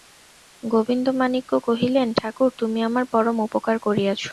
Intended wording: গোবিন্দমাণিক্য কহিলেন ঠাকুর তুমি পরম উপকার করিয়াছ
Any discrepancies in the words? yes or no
yes